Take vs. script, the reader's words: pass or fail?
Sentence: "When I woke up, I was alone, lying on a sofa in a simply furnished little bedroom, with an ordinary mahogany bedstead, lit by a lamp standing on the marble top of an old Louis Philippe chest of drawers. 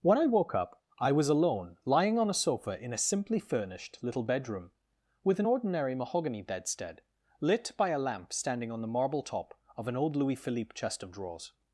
pass